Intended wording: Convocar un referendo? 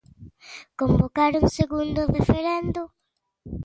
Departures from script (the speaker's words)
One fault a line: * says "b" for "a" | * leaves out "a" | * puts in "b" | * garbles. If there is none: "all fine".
* puts in "segundo"